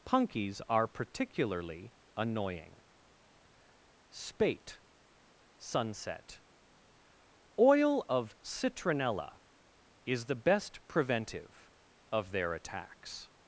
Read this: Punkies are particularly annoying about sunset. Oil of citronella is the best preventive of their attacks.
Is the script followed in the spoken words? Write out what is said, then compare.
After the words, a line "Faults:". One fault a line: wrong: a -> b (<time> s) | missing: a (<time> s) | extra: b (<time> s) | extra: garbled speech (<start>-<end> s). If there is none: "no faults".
Punkies are particularly annoying spate sunset. Oil of citronella is the best preventive of their attacks.
Faults:
wrong: about -> spate (4.1 s)